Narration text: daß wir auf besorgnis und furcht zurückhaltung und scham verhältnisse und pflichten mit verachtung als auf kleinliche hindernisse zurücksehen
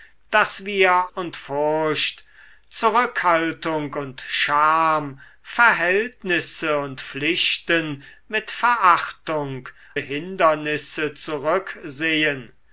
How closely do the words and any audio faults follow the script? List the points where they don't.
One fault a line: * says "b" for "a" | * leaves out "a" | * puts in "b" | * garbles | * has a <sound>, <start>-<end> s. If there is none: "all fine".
* leaves out "auf besorgnis"
* leaves out "als auf kleinliche"